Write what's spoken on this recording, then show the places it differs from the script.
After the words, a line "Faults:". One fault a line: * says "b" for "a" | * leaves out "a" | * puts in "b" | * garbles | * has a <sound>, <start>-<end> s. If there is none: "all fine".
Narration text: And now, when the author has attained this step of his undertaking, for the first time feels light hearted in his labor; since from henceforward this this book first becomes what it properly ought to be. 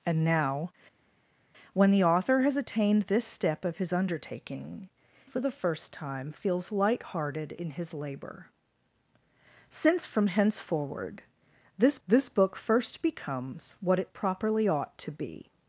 And now, when the author has attained this step of his undertaking, for the first time feels light hearted in his labor; since from henceforward this this book first becomes what it properly ought to be.
Faults:
all fine